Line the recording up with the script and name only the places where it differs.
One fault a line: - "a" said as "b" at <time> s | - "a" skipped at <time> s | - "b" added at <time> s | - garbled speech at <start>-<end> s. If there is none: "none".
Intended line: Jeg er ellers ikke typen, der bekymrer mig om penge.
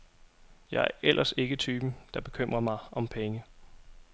none